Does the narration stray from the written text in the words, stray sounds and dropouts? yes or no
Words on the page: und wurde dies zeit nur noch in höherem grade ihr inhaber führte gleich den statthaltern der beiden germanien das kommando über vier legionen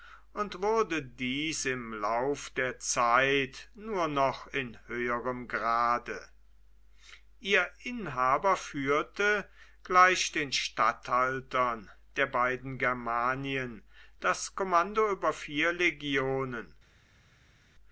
yes